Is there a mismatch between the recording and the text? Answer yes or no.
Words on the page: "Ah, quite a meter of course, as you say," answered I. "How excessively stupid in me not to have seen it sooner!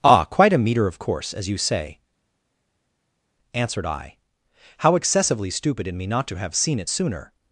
no